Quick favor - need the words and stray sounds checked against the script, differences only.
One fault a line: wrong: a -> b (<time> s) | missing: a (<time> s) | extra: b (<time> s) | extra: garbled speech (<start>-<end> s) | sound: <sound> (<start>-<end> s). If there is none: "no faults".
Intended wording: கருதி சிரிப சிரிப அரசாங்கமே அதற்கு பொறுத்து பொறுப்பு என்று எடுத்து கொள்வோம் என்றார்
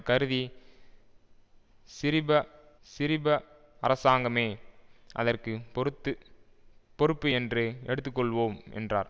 no faults